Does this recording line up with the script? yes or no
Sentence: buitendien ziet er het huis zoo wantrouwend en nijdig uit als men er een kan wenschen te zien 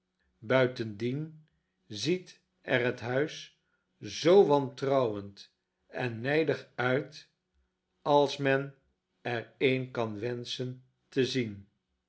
yes